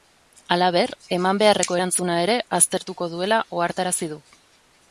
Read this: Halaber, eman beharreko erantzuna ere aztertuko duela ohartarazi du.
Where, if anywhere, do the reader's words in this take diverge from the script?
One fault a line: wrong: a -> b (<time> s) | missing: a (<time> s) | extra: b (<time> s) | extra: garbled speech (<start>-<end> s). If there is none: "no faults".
no faults